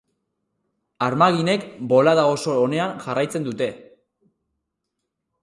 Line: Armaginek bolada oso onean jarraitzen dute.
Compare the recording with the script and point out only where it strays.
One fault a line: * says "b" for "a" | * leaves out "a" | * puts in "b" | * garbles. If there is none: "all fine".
all fine